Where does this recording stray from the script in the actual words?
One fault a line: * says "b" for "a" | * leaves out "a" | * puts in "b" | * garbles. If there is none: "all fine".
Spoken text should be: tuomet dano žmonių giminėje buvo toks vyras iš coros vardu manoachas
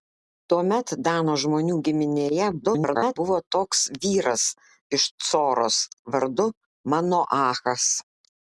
* garbles